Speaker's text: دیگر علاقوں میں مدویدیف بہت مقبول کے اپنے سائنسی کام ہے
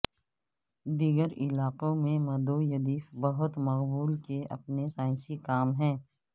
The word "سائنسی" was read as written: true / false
true